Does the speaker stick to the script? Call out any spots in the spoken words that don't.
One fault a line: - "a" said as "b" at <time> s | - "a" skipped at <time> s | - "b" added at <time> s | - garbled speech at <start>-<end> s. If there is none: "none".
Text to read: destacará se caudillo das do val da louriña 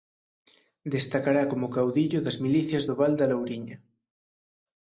- "se" said as "como" at 1.5 s
- "milicias" added at 2.5 s